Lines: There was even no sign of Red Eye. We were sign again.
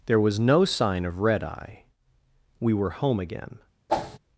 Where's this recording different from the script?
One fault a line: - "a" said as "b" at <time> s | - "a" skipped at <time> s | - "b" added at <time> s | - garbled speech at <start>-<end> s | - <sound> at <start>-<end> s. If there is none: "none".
- "even" skipped at 0.4 s
- "sign" said as "home" at 2.9 s
- whoosh at 3.9-4.2 s